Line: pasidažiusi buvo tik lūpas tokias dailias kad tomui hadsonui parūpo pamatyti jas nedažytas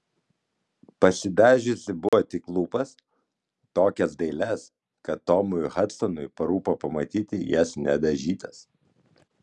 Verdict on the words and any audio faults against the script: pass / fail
fail